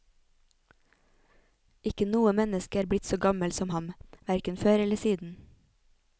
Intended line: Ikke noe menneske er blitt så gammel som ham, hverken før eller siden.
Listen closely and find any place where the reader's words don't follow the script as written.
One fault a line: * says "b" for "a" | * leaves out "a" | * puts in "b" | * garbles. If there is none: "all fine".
all fine